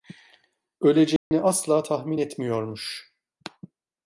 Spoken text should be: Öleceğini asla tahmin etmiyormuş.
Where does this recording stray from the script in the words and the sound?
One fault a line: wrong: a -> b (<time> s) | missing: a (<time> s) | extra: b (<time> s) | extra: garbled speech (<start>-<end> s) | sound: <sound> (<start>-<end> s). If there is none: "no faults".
sound: dropout (1.2-1.3 s)